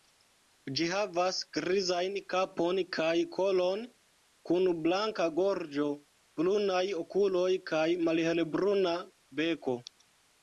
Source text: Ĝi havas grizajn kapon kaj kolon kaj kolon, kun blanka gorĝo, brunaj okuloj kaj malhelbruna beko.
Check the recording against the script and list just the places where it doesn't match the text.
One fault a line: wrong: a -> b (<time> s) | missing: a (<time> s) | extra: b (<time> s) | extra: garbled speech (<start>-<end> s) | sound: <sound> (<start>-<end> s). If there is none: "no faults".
missing: kaj kolon (3.8 s)